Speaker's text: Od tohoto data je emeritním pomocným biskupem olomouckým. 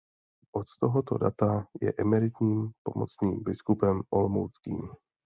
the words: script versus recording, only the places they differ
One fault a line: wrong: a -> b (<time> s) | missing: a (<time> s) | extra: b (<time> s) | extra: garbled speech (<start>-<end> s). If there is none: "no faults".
no faults